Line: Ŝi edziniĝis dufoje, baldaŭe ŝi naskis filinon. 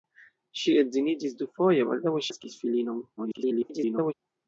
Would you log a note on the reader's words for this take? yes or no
yes